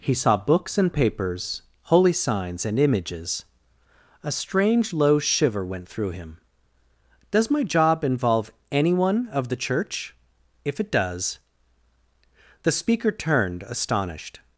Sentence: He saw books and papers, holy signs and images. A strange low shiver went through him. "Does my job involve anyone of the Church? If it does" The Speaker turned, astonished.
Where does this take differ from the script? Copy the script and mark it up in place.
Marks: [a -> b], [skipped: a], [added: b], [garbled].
He saw books and papers, holy signs and images. A strange low shiver went through him. "Does my job involve anyone of the Church? If it does" The Speaker turned, astonished.